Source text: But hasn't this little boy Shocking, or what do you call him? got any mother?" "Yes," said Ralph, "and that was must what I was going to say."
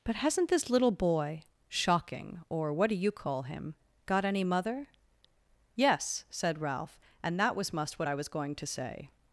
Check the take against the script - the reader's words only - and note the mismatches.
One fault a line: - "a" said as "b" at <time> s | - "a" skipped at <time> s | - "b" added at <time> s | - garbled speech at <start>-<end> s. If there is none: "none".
none